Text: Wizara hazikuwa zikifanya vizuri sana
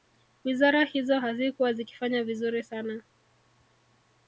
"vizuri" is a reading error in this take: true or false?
false